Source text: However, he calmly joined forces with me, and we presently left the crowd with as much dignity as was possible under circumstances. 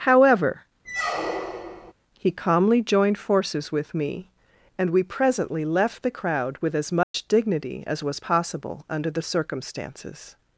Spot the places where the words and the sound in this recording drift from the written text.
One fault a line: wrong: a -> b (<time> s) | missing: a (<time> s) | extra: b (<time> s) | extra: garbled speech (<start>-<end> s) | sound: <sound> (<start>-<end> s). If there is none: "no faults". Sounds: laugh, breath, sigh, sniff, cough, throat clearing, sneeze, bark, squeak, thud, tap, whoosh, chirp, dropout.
sound: squeak (0.8-1.9 s)
sound: dropout (7.0-7.1 s)
extra: the (9.1 s)